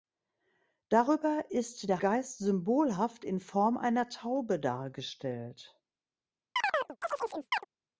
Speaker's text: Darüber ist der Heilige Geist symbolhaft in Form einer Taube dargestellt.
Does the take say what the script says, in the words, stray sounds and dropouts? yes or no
no